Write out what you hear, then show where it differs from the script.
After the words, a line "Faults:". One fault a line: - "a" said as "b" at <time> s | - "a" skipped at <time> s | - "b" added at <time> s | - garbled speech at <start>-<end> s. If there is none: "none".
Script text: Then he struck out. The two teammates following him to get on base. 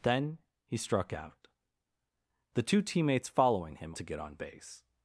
Then he struck out. The two teammates following him to get on base.
Faults:
none